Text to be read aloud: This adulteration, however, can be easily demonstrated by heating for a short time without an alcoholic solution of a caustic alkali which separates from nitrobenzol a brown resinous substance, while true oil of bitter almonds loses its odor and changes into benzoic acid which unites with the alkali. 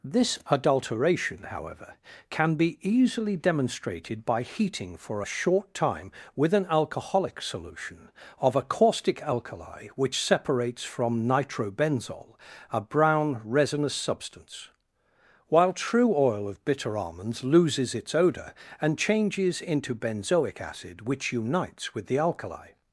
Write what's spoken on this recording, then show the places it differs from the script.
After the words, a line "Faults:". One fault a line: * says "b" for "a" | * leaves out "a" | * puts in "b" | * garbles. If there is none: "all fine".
This adulteration, however, can be easily demonstrated by heating for a short time with an alcoholic solution of a caustic alkali which separates from nitrobenzol a brown resinous substance, while true oil of bitter almonds loses its odor and changes into benzoic acid which unites with the alkali.
Faults:
* says "with" for "without"